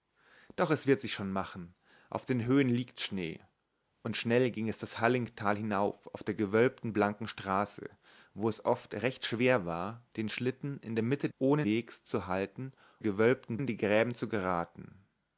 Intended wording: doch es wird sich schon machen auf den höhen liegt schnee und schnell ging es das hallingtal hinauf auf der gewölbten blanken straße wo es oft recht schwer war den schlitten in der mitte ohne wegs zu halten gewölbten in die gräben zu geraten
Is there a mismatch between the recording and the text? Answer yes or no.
no